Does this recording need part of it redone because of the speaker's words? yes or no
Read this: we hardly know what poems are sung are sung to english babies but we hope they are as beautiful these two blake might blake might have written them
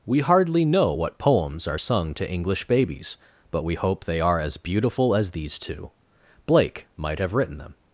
yes